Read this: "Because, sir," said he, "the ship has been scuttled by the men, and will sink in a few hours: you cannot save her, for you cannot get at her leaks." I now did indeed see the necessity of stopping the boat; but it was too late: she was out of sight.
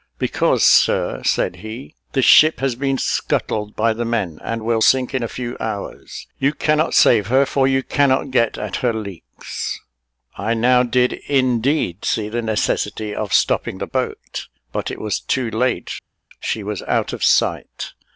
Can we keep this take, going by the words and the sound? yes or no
yes